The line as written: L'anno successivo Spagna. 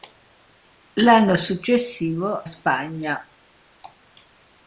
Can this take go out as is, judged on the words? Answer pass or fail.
pass